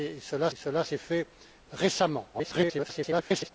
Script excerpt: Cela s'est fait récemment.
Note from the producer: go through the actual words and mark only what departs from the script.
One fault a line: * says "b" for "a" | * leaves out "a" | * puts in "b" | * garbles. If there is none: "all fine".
* puts in "cela"
* garbles